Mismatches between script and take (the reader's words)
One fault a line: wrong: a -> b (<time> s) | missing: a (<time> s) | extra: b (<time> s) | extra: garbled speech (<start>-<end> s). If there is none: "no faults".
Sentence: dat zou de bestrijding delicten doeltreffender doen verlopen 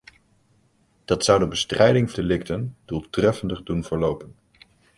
no faults